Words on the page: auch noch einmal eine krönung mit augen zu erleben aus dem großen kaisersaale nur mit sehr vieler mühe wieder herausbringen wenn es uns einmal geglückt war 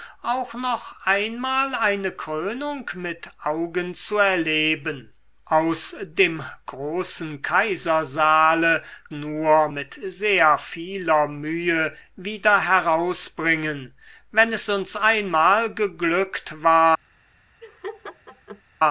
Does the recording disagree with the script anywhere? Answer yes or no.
no